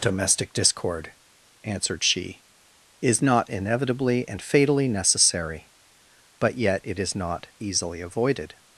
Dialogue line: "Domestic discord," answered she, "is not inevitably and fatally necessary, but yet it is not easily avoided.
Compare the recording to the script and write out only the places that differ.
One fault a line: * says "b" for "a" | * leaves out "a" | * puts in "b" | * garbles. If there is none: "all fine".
all fine